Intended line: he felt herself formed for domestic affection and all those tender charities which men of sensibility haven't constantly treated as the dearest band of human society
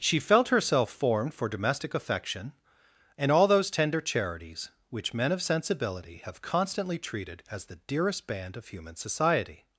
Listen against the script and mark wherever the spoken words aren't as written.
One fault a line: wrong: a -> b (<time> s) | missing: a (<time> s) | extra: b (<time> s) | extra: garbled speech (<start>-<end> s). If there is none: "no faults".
wrong: he -> she (0.0 s)
wrong: haven't -> have (6.2 s)